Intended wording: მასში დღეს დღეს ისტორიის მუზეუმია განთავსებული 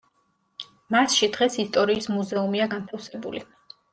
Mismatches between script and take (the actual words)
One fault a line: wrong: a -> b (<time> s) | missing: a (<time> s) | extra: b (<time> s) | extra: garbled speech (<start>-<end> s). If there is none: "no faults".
missing: დღეს (1.6 s)